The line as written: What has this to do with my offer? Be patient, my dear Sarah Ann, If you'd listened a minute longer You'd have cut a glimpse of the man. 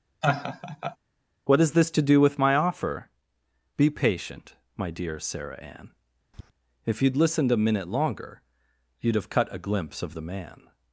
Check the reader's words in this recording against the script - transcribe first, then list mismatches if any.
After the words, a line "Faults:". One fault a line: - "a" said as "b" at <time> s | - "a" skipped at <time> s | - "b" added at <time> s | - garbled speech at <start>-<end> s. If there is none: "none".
What has this to do with my offer? Be patient, my dear Sarah Ann, If you'd listened a minute longer You'd have cut a glimpse of the man.
Faults:
none